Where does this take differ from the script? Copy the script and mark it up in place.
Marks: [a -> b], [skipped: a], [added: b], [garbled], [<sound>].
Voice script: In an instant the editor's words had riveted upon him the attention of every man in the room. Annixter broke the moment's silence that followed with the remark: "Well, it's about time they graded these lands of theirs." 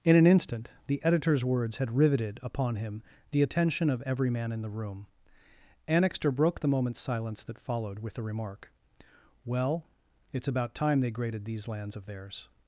In an instant the editor's words had riveted upon him the attention of every man in the room. Annixter broke the moment's silence that followed with the remark: "Well, it's about time they graded these lands of theirs."